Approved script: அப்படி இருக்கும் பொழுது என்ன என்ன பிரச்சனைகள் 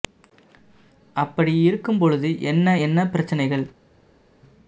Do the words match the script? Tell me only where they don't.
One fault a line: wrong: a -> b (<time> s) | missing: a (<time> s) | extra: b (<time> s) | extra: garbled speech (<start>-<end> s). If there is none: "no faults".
no faults